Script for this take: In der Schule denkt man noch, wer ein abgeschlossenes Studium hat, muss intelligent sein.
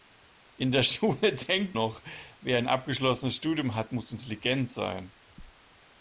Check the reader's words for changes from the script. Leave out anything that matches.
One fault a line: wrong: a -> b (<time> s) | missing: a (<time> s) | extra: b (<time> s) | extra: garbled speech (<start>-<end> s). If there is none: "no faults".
missing: man (1.8 s)